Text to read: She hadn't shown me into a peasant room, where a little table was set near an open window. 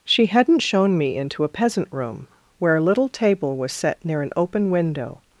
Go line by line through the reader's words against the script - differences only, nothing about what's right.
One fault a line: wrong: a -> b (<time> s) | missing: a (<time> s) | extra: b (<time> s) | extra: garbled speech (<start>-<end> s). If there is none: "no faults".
no faults